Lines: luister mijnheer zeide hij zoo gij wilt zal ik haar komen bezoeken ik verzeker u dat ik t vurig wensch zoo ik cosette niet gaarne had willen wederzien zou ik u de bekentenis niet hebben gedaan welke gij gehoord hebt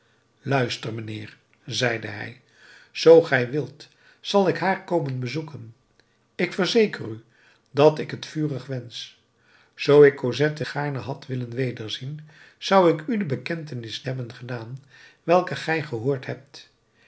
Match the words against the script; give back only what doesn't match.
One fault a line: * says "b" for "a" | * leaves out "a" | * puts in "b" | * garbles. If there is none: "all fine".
* leaves out "niet"
* leaves out "niet"